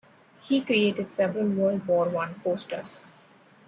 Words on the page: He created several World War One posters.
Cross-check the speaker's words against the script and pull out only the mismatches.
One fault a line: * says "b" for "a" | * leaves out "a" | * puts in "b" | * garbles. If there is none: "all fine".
all fine